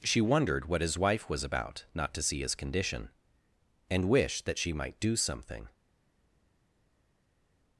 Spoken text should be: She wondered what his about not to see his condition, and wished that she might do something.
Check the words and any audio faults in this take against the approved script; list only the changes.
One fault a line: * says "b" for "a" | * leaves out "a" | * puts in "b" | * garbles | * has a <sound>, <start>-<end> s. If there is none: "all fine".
* puts in "wife was"